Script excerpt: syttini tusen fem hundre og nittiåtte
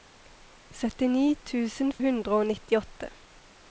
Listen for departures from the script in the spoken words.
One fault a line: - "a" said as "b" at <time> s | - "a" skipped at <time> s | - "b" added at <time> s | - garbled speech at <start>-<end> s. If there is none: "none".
- "fem" skipped at 1.9 s